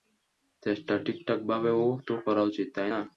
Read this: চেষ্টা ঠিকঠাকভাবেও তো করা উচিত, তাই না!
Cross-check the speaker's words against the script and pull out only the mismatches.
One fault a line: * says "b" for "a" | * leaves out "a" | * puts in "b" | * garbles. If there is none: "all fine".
all fine